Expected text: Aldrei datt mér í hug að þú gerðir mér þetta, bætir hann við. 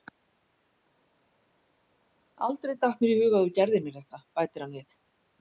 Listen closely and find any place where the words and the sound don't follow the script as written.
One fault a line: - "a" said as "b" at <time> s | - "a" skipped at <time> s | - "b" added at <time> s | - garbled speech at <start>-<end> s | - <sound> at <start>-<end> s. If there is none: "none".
none